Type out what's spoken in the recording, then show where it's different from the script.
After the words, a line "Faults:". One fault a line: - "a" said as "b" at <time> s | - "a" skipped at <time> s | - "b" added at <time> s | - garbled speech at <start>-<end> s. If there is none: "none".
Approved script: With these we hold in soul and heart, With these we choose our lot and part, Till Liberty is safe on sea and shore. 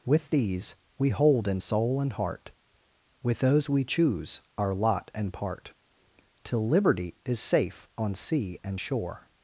With these we hold in soul and heart, With those we choose our lot and part, Till Liberty is safe on sea and shore.
Faults:
- "these" said as "those" at 3.4 s